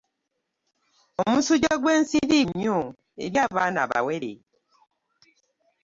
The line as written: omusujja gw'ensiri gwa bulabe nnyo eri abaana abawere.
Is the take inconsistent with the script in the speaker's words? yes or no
yes